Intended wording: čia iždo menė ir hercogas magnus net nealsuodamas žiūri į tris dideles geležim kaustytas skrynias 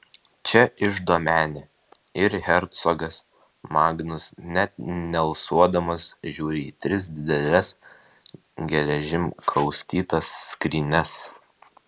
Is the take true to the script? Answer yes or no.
yes